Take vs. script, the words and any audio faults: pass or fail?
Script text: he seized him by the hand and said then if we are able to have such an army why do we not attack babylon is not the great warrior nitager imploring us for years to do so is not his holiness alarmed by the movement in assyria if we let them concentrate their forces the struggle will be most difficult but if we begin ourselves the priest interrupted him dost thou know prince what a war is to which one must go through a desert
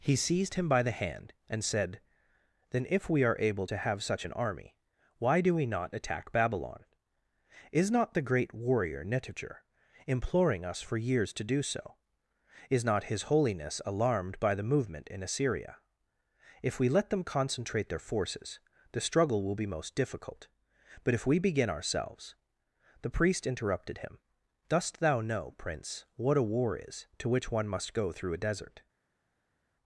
pass